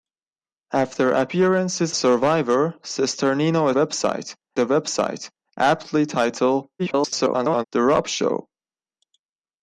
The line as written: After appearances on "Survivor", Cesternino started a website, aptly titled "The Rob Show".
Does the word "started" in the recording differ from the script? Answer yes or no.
yes